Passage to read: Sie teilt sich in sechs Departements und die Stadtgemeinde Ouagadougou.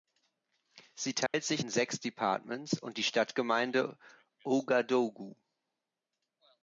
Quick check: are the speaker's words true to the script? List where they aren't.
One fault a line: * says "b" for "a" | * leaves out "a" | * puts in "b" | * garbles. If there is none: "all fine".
all fine